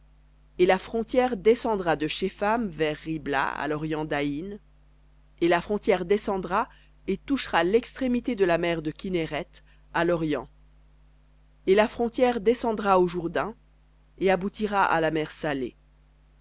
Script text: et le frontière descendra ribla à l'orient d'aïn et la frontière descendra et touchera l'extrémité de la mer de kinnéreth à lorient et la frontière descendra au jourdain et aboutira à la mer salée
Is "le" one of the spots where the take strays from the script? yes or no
yes